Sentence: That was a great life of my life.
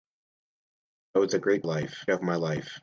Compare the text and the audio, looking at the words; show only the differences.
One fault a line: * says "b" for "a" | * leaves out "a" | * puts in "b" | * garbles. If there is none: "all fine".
all fine